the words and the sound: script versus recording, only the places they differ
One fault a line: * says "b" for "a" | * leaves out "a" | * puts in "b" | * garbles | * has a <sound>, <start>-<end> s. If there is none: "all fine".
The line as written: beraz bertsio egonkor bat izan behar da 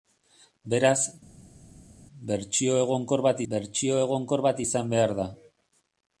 * puts in "bertsio egonkor bat"